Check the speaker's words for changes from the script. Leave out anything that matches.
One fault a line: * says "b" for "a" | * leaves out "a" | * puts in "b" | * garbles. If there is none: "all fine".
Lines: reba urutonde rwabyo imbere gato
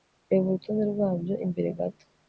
all fine